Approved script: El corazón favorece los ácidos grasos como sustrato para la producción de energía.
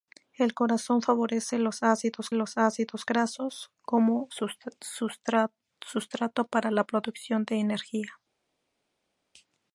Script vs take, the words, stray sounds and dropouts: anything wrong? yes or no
yes